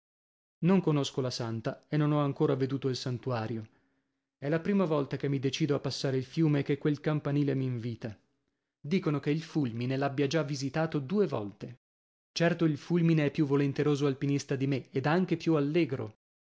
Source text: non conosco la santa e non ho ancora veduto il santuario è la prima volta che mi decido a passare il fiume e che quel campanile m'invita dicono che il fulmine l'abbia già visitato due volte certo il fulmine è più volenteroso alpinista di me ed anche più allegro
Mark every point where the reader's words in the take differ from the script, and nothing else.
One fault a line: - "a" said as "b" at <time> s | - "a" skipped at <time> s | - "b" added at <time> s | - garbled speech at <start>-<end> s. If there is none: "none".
none